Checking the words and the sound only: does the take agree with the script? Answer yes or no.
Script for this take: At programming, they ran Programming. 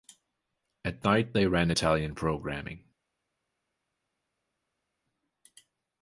no